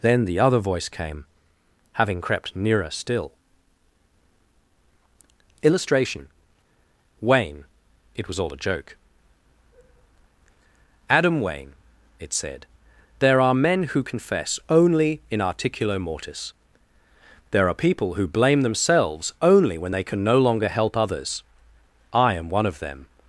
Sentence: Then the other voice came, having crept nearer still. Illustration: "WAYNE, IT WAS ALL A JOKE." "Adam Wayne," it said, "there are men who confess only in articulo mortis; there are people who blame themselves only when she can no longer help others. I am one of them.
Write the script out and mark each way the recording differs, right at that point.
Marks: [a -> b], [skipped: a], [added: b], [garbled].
Then the other voice came, having crept nearer still. Illustration: "WAYNE, IT WAS ALL A JOKE." "Adam Wayne," it said, "there are men who confess only in articulo mortis; there are people who blame themselves only when [she -> they] can no longer help others. I am one of them.